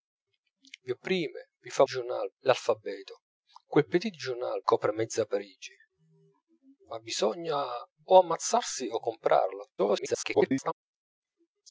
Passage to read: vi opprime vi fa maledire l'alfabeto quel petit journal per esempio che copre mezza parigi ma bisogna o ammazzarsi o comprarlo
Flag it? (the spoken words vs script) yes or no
yes